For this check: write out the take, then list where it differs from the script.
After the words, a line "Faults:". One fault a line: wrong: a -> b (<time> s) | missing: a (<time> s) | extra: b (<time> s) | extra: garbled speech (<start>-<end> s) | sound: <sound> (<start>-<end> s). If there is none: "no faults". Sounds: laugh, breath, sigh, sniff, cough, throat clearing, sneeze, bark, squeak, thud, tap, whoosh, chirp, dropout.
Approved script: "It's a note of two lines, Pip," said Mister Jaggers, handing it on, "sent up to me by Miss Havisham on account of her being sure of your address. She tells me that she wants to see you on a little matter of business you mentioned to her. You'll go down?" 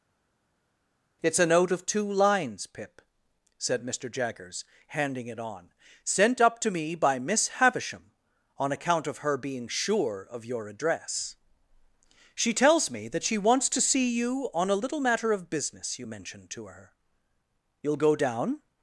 "It's a note of two lines, Pip," said Mister Jaggers, handing it on, "sent up to me by Miss Havisham on account of her being sure of your address. She tells me that she wants to see you on a little matter of business you mentioned to her. You'll go down?"
Faults:
no faults